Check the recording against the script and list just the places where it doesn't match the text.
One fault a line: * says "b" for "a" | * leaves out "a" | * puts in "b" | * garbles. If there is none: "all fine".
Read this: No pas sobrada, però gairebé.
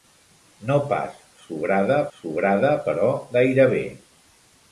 * puts in "sobrada"